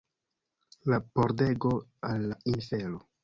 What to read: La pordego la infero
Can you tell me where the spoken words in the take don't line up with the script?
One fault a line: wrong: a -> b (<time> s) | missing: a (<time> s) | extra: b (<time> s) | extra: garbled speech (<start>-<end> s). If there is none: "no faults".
extra: al (2.1 s)